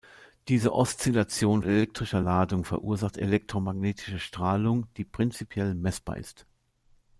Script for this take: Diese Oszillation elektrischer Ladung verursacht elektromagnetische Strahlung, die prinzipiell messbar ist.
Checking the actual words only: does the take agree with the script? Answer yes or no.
yes